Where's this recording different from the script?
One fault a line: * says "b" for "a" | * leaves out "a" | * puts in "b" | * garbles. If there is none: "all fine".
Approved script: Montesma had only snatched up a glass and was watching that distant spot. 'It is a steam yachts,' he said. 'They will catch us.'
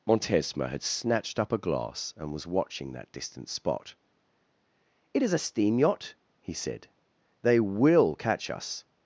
* leaves out "only"
* says "yacht" for "yachts"